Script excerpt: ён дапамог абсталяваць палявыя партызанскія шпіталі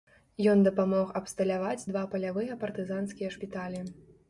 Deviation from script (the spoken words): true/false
true